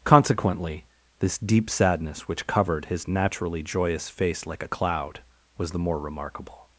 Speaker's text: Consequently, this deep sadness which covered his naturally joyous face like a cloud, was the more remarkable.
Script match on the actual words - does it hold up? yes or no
yes